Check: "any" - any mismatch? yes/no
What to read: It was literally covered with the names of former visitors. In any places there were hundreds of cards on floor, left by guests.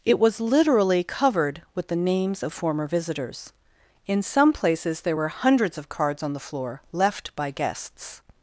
yes